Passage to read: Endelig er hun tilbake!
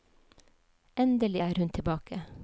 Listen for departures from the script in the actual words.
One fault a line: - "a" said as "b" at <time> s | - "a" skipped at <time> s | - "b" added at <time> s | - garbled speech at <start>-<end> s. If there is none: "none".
none